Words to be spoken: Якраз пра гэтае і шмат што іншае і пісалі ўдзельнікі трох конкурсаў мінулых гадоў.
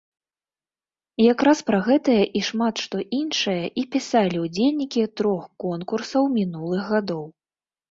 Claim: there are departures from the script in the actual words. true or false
false